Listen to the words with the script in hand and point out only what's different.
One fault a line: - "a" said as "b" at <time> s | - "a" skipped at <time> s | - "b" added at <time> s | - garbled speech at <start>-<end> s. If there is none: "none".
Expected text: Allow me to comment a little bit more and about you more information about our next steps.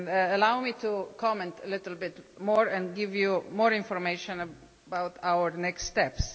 - "about" said as "give" at 2.9 s